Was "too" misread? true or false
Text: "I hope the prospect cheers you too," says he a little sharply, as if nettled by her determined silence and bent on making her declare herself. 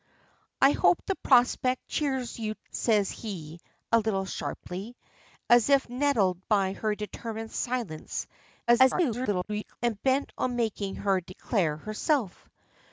true